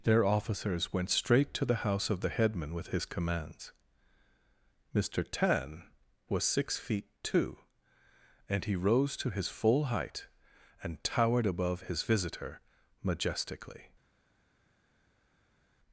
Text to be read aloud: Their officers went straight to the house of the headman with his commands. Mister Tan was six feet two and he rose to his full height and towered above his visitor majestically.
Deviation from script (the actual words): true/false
false